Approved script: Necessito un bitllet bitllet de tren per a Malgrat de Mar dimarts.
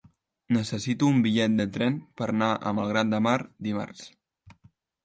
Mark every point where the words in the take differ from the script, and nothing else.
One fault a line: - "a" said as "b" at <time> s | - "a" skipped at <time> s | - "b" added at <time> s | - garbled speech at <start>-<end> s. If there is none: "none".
- "bitllet" skipped at 1.6 s
- "anar" added at 2.4 s